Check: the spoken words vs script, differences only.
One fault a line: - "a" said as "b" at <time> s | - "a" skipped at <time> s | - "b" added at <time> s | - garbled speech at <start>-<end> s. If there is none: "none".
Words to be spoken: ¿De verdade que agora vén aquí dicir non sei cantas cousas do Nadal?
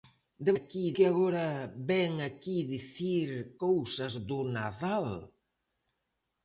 - "verdade" said as "aquí" at 0.6 s
- "non sei cantas" skipped at 3.3 s